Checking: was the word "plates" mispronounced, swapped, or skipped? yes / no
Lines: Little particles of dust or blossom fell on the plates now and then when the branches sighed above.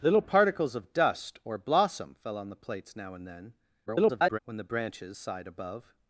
no